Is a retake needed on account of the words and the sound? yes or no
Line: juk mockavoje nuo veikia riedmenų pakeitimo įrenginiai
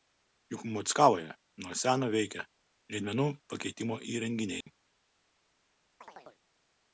yes